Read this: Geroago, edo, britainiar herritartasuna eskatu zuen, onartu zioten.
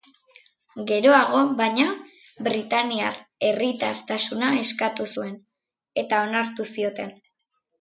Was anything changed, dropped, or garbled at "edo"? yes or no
yes